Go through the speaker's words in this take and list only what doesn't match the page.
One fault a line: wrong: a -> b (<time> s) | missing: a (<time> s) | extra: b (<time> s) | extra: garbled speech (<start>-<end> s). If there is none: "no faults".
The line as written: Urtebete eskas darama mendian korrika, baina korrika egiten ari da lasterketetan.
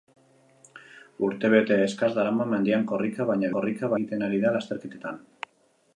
no faults